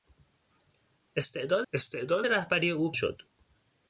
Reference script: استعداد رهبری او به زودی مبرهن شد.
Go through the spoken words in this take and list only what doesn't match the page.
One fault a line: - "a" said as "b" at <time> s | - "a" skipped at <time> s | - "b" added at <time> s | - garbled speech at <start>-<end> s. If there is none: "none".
- "استعداد" added at 1.7 s
- "به زودی مبرهن" skipped at 2.9 s